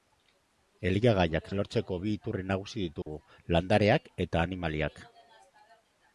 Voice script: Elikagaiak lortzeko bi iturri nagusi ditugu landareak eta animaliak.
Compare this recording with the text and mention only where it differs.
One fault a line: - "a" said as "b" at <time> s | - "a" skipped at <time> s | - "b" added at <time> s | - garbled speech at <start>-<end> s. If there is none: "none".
none